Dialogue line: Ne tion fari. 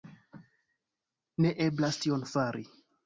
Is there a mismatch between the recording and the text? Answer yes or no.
yes